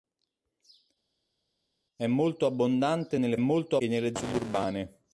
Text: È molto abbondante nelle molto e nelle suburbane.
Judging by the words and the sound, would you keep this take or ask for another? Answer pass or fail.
pass